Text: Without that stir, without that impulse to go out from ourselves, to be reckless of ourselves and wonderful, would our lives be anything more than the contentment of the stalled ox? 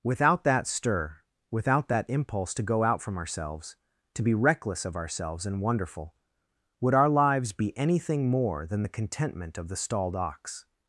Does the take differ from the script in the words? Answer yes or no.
no